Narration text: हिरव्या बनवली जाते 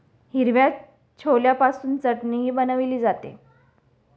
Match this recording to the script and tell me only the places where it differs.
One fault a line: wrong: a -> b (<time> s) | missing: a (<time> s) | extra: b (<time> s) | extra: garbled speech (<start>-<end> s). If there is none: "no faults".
extra: छोल्यापासून चटणीही (1.2 s)